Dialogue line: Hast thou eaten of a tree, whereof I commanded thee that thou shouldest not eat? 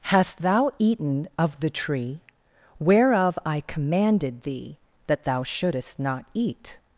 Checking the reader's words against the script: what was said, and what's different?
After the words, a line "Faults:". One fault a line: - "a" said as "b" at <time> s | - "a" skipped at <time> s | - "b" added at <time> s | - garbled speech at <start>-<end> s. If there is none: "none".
Hast thou eaten of the tree, whereof I commanded thee that thou shouldest not eat?
Faults:
- "a" said as "the" at 1.6 s